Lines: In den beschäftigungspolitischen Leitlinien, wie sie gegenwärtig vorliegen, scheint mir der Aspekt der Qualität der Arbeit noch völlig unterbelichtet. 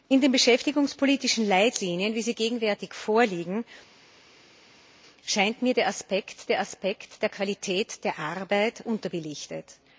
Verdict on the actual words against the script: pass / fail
fail